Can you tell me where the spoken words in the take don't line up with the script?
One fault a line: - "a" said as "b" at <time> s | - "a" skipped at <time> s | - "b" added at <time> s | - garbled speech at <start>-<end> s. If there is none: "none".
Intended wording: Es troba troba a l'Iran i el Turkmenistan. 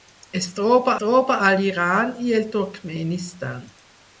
none